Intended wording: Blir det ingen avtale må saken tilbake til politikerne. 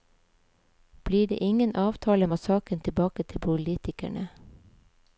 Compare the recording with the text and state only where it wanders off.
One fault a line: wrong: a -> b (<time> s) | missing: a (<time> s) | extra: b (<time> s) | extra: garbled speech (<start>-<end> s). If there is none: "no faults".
no faults